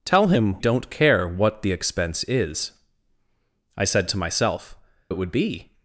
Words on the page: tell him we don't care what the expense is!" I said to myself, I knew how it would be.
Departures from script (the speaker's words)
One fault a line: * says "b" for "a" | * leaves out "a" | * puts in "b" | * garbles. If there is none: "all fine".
* leaves out "we"
* leaves out "I knew how"